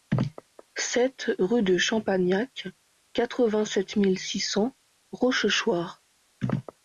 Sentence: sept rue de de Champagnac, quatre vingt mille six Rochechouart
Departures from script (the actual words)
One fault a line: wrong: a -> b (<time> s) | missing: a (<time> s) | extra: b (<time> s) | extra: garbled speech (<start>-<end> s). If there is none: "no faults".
missing: de (1.8 s)
extra: sept (3.6 s)
extra: cents (4.4 s)